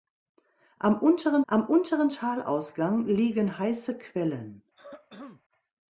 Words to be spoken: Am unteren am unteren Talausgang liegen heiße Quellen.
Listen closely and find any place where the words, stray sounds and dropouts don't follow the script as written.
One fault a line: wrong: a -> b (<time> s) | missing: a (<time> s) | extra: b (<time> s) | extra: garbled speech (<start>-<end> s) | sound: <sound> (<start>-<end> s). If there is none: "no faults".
sound: throat clearing (4.8-5.4 s)